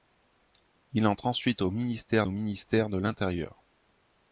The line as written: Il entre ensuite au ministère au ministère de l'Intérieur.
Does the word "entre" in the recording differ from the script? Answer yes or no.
no